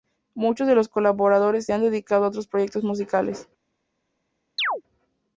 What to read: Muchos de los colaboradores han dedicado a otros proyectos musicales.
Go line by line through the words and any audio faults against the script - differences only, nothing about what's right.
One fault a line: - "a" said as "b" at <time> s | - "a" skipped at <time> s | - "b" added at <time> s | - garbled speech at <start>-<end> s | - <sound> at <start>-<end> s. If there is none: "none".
- chirp at 4.6-4.8 s